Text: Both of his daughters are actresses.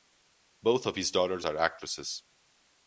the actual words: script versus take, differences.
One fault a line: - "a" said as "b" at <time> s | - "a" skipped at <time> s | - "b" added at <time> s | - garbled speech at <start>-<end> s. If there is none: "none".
none